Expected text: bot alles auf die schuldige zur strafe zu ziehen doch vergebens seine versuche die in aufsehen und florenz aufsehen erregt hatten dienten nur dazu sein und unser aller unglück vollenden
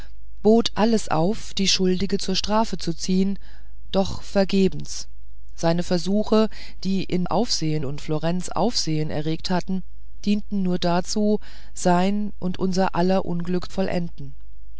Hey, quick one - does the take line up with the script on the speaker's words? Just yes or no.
yes